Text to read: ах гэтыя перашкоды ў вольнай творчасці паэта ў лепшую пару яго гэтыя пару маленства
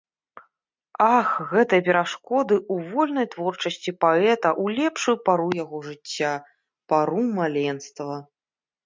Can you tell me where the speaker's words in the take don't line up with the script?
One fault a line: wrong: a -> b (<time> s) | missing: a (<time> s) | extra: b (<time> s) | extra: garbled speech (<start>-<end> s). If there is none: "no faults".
wrong: гэтыя -> жыцця (5.9 s)